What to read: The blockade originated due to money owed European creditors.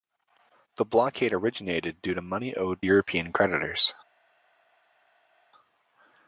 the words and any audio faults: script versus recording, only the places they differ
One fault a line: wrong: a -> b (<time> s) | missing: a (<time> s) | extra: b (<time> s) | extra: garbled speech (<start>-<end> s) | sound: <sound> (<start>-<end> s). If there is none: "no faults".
no faults